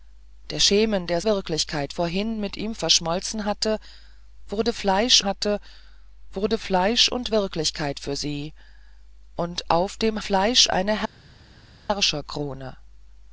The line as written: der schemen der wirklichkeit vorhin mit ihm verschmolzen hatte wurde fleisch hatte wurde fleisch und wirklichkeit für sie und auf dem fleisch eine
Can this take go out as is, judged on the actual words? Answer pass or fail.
pass